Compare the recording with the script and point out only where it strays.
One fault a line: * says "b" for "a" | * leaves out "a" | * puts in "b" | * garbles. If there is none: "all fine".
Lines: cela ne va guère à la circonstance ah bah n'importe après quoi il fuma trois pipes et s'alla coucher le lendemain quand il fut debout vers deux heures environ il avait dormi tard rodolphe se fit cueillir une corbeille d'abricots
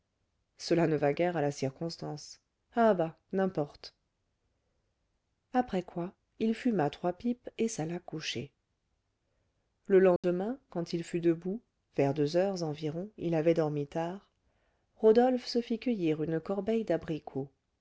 all fine